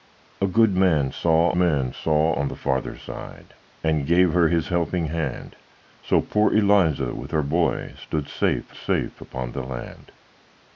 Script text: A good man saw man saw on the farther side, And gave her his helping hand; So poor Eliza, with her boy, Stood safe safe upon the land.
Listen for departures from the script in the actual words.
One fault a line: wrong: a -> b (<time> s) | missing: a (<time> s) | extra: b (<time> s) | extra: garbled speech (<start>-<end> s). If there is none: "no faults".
no faults